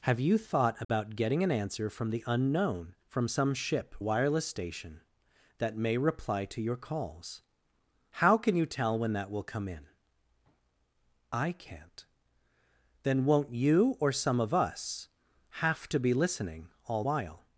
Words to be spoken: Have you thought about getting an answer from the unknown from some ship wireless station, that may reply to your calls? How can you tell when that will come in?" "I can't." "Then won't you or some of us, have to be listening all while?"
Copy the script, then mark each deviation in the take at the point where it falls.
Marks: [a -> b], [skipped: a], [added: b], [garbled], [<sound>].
Have you thought about [dropout] getting an answer from the unknown from some ship wireless station, that may reply to your calls? How can you tell when that will come in?" "I can't." "Then won't you or some of us, have to be listening all while?"